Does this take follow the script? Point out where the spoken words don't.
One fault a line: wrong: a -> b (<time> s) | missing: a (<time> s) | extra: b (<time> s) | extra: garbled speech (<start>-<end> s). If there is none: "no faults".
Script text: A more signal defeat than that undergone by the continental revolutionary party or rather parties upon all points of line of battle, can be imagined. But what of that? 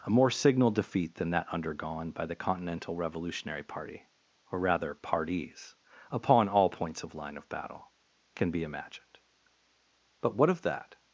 no faults